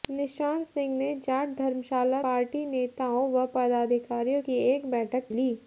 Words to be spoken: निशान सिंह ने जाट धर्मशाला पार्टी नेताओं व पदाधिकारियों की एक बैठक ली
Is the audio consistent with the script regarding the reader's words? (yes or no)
yes